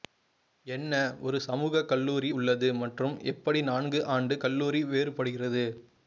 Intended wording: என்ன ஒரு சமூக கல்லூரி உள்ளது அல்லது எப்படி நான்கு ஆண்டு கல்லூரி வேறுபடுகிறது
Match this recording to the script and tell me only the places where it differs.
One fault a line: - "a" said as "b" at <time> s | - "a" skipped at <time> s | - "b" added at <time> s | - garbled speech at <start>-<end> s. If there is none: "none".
- "அல்லது" said as "மற்றும்" at 2.8 s